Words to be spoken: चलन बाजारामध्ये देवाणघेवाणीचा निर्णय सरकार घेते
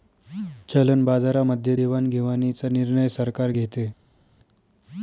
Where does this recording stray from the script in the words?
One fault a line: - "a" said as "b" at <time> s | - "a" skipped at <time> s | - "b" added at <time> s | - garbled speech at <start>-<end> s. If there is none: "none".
none